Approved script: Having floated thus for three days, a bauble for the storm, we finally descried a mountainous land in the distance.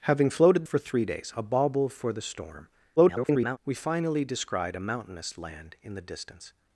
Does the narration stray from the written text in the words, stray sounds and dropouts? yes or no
yes